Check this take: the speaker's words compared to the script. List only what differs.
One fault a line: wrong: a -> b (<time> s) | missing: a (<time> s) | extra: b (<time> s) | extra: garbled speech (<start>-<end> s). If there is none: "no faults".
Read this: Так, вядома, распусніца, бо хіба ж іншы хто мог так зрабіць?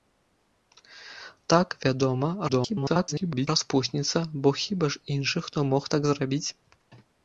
extra: garbled speech (2.5-3.5 s)